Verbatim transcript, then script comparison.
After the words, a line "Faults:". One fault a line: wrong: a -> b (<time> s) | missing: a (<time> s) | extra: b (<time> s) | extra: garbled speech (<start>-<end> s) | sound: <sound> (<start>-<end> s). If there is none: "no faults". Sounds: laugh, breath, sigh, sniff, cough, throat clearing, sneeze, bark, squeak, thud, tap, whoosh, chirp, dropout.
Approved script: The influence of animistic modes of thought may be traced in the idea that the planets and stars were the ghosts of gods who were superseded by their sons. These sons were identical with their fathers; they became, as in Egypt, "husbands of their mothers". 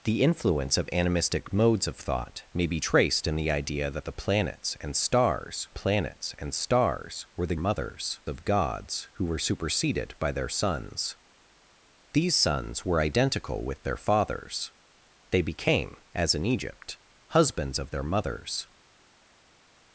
The influence of animistic modes of thought may be traced in the idea that the planets and stars planets and stars were the mothers of gods who were superseded by their sons. These sons were identical with their fathers; they became, as in Egypt, "husbands of their mothers".
Faults:
extra: planets and stars (5.7 s)
wrong: ghosts -> mothers (7.6 s)